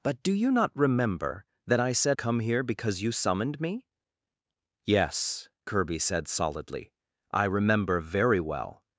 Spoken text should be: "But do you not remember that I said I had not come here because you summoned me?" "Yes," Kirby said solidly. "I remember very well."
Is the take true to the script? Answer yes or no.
no